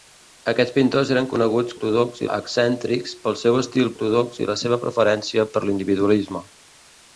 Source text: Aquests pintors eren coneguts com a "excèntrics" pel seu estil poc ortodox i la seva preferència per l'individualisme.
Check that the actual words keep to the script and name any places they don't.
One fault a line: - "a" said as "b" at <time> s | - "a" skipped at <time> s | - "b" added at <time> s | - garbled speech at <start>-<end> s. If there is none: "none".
- "com" said as "ortodox" at 1.8 s
- "poc" skipped at 3.9 s